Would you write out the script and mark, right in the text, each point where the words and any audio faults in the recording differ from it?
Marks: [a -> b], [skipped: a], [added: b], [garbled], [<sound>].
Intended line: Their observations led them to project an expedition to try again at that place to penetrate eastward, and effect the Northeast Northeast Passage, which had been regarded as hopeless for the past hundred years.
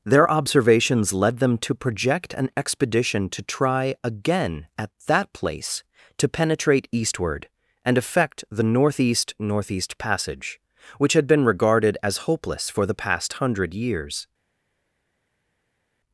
Their observations led them to project an expedition to try again at that place to penetrate eastward, and effect the Northeast Northeast Passage, which had been regarded as hopeless for the past hundred years.